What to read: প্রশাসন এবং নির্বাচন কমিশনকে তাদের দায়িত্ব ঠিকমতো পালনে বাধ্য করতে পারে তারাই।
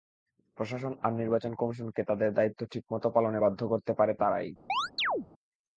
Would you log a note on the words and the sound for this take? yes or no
yes